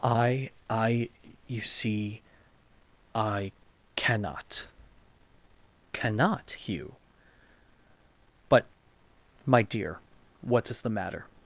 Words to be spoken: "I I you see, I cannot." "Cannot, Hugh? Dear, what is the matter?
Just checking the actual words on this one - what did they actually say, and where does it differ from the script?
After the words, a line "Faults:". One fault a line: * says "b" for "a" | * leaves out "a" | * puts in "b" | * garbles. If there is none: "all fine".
"I I you see, I cannot." "Cannot, Hugh? But, my dear, what is the matter?
Faults:
* puts in "But my"